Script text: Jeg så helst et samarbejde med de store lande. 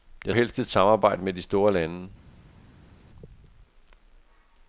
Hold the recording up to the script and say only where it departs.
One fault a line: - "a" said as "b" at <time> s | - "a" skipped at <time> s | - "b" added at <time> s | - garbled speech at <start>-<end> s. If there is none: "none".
- "så" skipped at 0.3 s